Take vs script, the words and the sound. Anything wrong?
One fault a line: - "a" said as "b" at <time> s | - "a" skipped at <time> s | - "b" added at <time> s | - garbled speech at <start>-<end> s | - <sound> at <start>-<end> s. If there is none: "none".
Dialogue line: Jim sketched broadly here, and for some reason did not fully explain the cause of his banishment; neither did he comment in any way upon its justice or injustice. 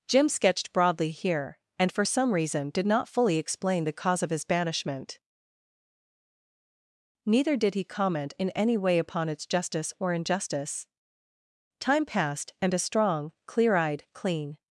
- "Time passed and a strong clear eyed clean" added at 11.8 s